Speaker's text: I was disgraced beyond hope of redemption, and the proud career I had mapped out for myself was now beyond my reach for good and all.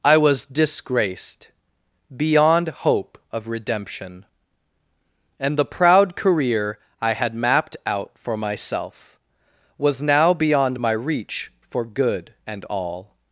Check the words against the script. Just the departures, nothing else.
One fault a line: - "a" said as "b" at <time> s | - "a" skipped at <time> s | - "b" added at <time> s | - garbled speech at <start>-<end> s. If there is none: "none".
none